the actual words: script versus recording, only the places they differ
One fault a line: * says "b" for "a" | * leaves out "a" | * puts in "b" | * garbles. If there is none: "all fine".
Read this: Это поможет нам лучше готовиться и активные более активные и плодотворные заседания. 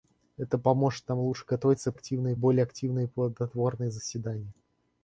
all fine